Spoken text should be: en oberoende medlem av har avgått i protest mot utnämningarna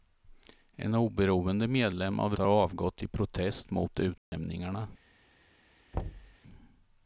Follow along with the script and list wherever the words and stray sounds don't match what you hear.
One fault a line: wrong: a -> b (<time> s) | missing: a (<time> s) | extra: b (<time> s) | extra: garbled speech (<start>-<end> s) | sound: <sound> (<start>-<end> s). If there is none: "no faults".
sound: dropout (4.2-4.3 s)
sound: thud (5.9-6.4 s)